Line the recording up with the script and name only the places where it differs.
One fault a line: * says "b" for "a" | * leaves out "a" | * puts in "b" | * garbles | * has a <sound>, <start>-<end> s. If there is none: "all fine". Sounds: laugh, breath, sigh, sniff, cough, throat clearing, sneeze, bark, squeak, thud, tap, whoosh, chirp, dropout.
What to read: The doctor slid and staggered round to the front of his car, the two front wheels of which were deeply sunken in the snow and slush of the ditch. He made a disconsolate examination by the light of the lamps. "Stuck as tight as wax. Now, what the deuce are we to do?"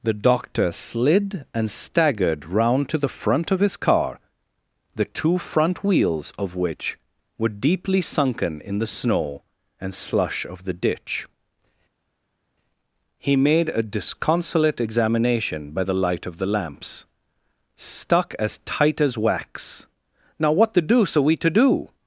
all fine